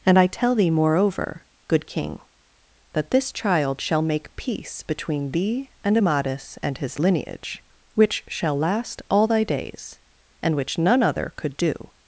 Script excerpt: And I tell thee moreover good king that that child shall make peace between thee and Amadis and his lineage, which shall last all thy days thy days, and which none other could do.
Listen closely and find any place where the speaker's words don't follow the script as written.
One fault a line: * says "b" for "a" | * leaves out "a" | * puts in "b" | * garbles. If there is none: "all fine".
* says "this" for "that"
* leaves out "thy days"